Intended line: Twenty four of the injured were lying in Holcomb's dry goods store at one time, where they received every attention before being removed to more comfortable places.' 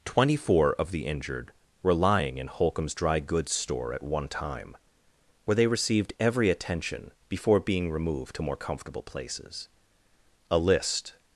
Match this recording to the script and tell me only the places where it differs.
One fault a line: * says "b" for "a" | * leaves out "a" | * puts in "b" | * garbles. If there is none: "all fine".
* puts in "A list"